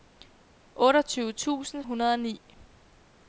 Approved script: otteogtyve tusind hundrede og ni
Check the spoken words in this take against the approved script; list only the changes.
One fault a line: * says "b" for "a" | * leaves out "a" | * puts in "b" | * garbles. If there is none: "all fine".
all fine